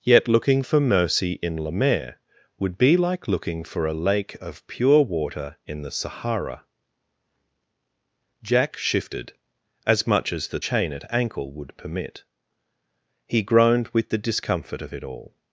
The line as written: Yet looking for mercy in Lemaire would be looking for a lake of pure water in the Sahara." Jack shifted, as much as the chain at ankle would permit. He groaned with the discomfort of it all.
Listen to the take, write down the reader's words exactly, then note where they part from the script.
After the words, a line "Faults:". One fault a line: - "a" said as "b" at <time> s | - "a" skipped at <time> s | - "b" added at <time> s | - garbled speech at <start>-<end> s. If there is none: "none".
Yet looking for mercy in Lemaire would be like looking for a lake of pure water in the Sahara." Jack shifted, as much as the chain at ankle would permit. He groaned with the discomfort of it all.
Faults:
- "like" added at 2.9 s